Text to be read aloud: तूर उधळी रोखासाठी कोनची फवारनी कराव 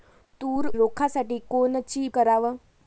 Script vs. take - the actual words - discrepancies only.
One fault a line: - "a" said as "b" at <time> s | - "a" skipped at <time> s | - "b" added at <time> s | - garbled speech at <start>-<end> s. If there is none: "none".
- "उधळी" skipped at 0.7 s
- "फवारनी" skipped at 2.1 s